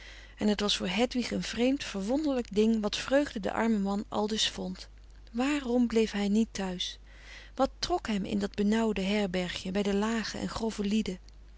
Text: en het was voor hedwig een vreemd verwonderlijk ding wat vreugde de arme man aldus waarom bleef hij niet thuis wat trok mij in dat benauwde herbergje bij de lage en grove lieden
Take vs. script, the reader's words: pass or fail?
fail